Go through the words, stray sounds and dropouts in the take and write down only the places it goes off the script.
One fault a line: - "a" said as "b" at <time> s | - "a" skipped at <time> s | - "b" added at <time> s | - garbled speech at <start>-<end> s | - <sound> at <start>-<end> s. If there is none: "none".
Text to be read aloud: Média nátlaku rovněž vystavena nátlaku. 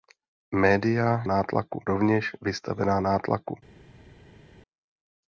none